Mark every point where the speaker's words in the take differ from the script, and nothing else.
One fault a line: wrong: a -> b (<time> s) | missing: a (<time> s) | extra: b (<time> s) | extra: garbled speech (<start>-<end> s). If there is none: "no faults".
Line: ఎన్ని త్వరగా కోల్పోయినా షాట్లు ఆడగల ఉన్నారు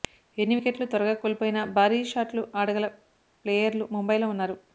extra: వికెట్లు (0.5 s)
extra: భారీ (1.7 s)
extra: ప్లేయర్లు ముంబైలో (3.4 s)